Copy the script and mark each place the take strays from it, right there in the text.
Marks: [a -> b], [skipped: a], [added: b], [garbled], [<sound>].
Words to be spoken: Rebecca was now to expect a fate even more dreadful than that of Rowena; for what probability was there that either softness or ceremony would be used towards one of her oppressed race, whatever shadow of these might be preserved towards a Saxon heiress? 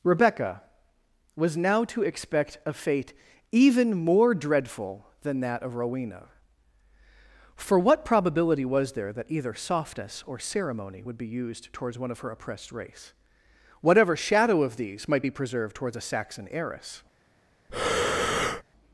Rebecca was now to expect a fate even more dreadful than that of Rowena; for what probability was there that either softness or ceremony would be used towards one of her oppressed race, whatever shadow of these might be preserved towards a Saxon heiress? [breath]